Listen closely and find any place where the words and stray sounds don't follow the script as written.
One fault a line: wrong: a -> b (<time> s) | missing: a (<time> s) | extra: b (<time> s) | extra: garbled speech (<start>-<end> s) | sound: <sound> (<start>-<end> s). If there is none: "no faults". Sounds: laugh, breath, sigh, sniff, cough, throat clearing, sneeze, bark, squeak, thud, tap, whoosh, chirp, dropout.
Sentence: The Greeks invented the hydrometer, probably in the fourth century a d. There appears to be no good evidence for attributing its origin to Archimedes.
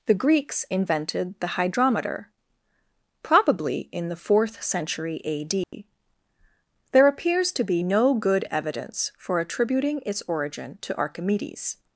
sound: dropout (5.6-5.7 s)